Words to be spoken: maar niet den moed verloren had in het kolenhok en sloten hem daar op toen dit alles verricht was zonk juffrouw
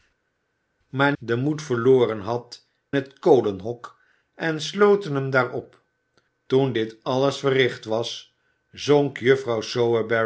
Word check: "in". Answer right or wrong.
wrong